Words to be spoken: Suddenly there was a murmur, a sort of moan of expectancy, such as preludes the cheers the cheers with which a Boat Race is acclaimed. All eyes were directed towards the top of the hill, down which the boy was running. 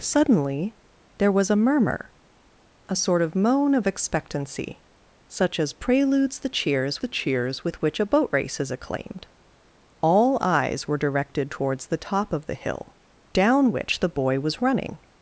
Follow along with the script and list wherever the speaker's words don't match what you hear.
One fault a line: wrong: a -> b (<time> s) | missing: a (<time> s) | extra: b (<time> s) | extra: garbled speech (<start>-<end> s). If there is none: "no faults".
no faults